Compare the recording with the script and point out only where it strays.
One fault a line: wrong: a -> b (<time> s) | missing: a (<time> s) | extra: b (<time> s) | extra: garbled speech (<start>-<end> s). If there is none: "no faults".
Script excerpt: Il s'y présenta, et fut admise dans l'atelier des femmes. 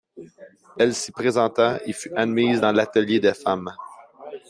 wrong: Il -> Elle (0.8 s)